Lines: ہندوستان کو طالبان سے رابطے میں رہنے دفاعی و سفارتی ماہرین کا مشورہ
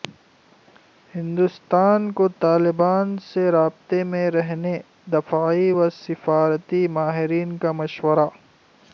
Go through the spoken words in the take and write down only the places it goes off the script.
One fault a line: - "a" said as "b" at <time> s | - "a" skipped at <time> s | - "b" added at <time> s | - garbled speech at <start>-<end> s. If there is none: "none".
none